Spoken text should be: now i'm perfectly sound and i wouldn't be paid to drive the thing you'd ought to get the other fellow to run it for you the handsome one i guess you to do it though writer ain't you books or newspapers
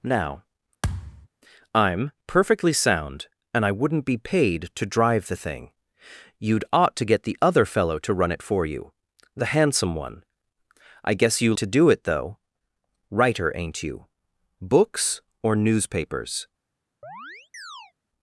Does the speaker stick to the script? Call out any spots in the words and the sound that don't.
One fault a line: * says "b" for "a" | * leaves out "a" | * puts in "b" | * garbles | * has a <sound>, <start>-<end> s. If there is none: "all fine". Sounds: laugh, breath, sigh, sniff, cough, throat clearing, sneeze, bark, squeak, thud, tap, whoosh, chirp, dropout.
* has a thud, 0.8-1.3 s
* has a chirp, 17.0-17.9 s